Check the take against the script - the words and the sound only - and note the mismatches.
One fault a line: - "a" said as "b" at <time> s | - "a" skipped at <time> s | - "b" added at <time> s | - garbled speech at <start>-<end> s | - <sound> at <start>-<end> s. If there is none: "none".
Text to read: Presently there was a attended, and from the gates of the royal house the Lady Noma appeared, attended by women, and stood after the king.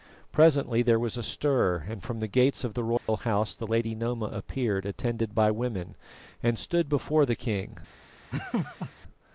- "attended" said as "stir" at 1.2 s
- dropout at 3.0-3.1 s
- "after" said as "before" at 6.9 s
- laugh at 8.3-8.9 s